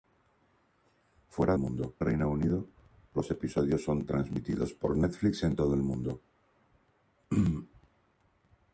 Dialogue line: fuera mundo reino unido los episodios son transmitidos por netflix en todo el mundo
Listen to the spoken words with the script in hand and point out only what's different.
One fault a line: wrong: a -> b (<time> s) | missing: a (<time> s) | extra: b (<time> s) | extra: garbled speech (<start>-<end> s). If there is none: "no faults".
no faults